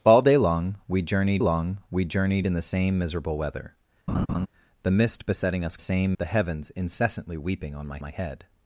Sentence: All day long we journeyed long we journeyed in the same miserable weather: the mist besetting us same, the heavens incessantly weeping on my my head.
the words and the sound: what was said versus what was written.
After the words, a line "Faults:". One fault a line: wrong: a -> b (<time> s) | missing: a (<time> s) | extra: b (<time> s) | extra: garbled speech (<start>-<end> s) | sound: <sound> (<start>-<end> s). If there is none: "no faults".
All day long we journeyed long we journeyed in the same miserable weather: the mist besetting us same, the heavens incessantly weeping on my my head.
Faults:
sound: laugh (4.1-4.5 s)